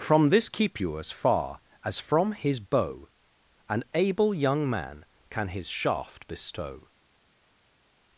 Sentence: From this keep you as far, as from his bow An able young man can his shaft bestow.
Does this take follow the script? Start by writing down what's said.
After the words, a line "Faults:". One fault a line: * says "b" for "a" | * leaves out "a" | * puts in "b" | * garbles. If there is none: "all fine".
From this keep you as far, as from his bow An able young man can his shaft bestow.
Faults:
all fine